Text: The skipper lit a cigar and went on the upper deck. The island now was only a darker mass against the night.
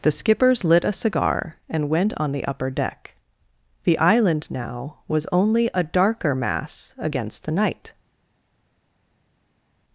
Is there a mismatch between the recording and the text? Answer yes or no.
yes